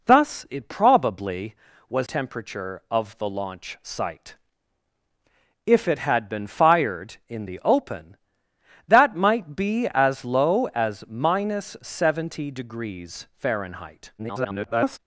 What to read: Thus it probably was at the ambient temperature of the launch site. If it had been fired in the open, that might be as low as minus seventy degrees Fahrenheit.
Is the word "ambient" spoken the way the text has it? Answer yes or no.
no